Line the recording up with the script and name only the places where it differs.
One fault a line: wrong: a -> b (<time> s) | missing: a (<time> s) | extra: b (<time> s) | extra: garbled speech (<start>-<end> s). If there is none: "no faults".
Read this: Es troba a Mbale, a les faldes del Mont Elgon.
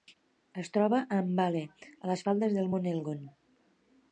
no faults